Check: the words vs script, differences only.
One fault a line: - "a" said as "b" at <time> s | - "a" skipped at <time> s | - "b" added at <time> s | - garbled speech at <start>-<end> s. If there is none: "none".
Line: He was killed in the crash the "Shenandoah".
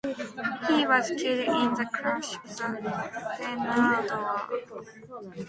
none